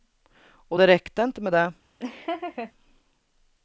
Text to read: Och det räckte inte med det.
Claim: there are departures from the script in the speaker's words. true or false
false